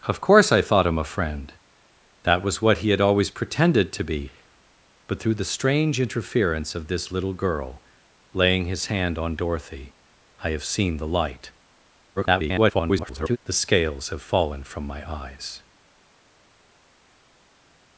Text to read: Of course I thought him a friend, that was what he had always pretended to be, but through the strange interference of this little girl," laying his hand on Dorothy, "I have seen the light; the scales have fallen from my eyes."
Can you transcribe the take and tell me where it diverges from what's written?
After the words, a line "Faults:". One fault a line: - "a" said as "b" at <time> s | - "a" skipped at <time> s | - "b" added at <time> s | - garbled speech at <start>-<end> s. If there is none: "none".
Of course I thought him a friend, that was what he had always pretended to be, but through the strange interference of this little girl," laying his hand on Dorothy, "I have seen the light; [garbled] the scales have fallen from my eyes."
Faults:
- garbled speech at 12.2-13.4 s